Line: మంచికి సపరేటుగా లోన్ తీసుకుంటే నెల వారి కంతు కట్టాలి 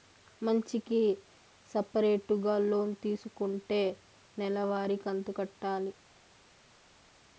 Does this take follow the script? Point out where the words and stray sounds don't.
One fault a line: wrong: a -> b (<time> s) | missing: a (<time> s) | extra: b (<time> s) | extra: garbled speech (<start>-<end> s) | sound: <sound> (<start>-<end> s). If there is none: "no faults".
no faults